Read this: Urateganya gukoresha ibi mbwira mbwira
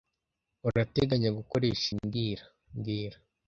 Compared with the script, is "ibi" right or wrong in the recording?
wrong